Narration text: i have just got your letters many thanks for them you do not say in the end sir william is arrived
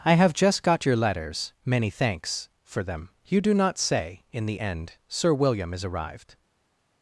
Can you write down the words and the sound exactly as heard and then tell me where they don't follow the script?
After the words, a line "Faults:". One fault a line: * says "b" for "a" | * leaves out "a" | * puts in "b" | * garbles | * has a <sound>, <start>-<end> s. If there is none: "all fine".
i have just got your letters many thanks for them you do not say in the end sir william is arrived
Faults:
all fine